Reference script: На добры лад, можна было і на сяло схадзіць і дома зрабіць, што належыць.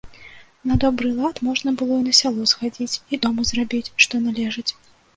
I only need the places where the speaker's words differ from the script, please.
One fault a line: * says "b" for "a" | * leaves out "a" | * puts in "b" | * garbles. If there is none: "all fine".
all fine